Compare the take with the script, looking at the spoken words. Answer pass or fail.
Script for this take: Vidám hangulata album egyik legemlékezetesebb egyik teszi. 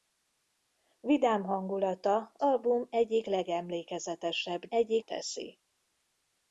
pass